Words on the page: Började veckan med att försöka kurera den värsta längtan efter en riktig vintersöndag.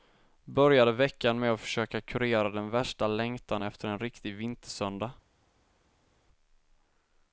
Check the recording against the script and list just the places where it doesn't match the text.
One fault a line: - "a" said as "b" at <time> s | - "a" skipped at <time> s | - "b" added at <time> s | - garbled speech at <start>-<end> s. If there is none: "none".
none